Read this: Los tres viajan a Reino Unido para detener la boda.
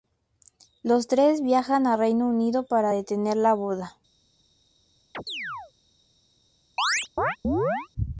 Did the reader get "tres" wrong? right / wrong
right